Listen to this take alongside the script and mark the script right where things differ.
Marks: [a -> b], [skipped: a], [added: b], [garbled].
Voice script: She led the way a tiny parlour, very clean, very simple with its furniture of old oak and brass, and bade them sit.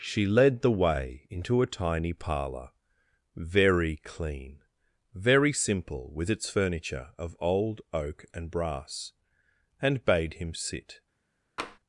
She led the way [added: into] a tiny parlour, very clean, very simple with its furniture of old oak and brass, and bade [them -> him] sit.